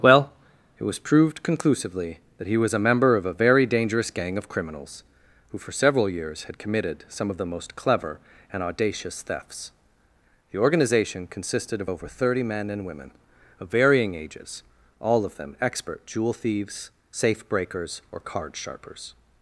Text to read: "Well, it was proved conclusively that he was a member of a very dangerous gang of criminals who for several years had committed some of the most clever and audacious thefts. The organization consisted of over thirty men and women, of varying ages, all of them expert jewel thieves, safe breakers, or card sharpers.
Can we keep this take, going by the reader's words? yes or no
yes